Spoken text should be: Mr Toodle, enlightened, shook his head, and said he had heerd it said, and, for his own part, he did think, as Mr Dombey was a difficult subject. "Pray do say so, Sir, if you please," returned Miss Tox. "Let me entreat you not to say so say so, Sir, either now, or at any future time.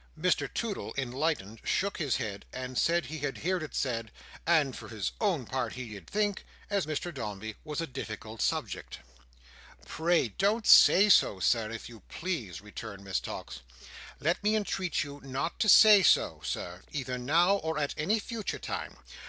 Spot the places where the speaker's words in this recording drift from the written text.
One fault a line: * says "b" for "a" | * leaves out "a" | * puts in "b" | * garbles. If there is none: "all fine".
* says "don't" for "do"
* leaves out "say so"